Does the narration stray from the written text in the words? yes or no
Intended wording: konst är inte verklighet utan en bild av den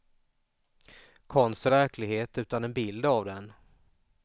yes